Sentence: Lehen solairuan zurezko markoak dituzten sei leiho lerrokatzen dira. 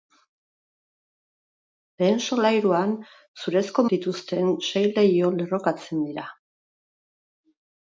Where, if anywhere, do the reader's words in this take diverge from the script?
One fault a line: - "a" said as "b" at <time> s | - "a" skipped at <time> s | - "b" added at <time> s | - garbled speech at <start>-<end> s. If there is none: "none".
- "markoak" skipped at 3.9 s